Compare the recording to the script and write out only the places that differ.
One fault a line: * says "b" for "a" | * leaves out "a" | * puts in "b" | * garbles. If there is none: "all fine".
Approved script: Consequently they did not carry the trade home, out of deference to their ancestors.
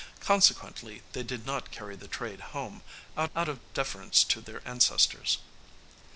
* puts in "out"